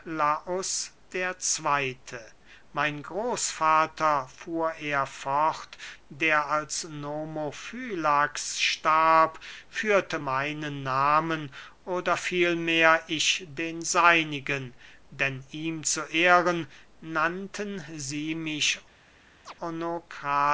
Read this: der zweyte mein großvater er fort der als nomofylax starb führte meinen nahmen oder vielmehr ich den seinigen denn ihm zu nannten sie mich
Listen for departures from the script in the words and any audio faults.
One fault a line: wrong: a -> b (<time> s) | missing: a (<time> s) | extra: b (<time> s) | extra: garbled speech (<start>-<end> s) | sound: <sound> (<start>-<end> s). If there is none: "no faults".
extra: fuhr (4.3 s)
extra: ehren (16.0 s)
sound: chirp (19.5-19.5 s)